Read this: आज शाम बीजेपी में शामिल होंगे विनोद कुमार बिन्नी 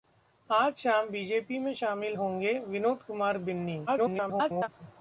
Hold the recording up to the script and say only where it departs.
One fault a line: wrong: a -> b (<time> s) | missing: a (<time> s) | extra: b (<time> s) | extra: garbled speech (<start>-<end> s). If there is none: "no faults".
extra: garbled speech (3.9-4.7 s)